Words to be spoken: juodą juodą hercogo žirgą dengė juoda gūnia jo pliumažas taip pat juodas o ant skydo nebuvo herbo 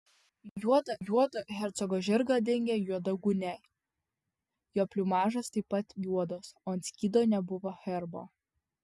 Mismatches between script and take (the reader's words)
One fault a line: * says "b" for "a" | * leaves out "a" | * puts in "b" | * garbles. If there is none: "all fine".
all fine